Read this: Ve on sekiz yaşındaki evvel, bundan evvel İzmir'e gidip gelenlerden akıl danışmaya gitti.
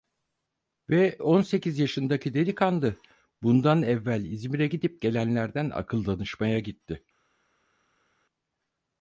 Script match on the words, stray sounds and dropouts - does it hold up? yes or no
no